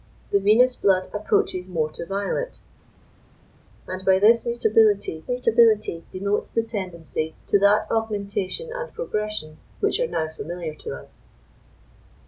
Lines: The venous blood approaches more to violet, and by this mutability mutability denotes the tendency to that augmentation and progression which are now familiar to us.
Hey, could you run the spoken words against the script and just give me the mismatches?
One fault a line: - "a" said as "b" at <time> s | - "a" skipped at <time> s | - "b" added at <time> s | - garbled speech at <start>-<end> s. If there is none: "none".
none